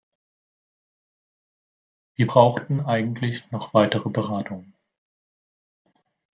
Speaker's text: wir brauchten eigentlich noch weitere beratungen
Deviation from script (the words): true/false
false